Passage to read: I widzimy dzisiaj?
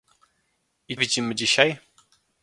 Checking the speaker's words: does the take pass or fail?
pass